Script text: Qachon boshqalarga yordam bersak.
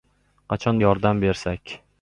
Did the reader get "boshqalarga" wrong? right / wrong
wrong